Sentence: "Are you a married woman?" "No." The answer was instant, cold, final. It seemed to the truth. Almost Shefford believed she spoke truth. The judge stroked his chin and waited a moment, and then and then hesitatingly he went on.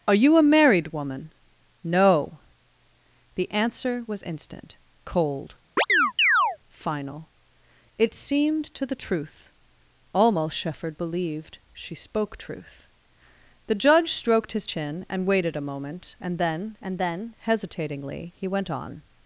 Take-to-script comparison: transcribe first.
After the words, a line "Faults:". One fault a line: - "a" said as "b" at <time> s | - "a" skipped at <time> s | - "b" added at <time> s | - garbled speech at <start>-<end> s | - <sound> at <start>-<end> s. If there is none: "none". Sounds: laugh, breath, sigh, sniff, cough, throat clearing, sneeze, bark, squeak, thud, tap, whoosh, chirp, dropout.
"Are you a married woman?" "No." The answer was instant, cold, final. It seemed to the truth. Almost Shefford believed she spoke truth. The judge stroked his chin and waited a moment, and then and then hesitatingly he went on.
Faults:
- chirp at 5.8-6.6 s